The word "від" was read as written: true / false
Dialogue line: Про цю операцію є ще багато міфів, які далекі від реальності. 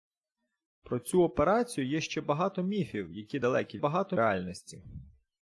false